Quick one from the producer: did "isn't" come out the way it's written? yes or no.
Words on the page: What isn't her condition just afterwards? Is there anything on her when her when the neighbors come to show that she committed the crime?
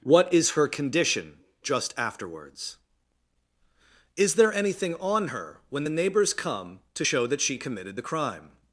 no